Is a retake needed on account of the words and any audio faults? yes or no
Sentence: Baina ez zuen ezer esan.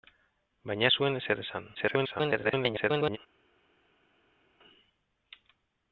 yes